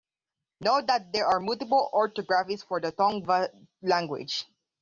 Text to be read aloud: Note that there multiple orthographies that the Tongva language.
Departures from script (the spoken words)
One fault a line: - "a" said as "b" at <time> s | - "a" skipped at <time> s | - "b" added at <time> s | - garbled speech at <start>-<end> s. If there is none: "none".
- "are" added at 1.3 s
- "that" said as "for" at 2.6 s